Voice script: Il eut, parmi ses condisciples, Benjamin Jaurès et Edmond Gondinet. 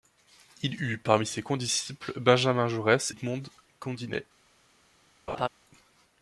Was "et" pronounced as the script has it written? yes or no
no